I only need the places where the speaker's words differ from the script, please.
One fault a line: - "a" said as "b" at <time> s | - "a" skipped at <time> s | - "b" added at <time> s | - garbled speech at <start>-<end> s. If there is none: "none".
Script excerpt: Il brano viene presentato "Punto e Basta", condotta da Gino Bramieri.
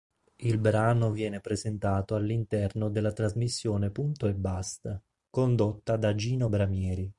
- "all'interno della trasmissione" added at 2.1 s